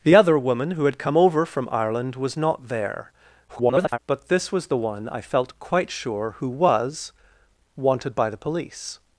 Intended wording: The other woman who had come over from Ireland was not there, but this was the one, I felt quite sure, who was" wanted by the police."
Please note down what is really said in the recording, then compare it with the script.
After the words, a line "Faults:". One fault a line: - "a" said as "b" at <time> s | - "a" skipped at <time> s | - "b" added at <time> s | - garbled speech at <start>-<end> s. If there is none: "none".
The other woman who had come over from Ireland was not there, [garbled] but this was the one, I felt quite sure, who was" wanted by the police."
Faults:
- garbled speech at 3.5-4.0 s